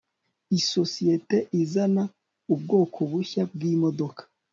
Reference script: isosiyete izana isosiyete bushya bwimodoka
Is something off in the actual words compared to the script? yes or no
yes